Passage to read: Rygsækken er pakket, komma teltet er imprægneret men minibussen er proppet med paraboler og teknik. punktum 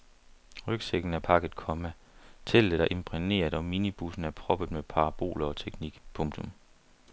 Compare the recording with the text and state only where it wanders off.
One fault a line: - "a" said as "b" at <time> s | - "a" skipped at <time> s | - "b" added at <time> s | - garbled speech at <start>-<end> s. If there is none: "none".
- "men" said as "og" at 3.5 s